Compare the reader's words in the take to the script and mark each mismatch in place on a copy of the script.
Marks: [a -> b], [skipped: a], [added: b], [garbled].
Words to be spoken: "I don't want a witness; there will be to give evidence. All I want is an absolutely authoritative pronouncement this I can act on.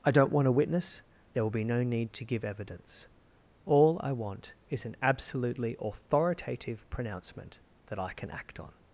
"I don't want a witness; there will be [added: no need] to give evidence. All I want is an absolutely authoritative pronouncement [this -> that] I can act on.